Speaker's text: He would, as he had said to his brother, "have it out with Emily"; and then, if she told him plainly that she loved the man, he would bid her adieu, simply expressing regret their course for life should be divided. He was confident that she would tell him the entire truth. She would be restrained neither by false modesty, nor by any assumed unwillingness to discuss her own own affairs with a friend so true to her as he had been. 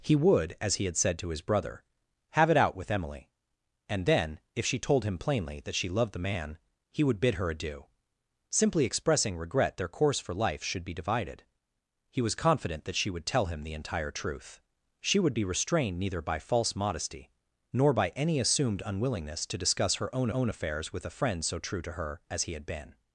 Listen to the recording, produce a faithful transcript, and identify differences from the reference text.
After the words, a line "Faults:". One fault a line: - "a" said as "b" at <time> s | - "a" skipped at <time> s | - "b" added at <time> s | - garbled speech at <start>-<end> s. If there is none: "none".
He would, as he had said to his brother, "have it out with Emily"; and then, if she told him plainly that she loved the man, he would bid her adieu, simply expressing regret their course for life should be divided. He was confident that she would tell him the entire truth. She would be restrained neither by false modesty, nor by any assumed unwillingness to discuss her own own affairs with a friend so true to her as he had been.
Faults:
none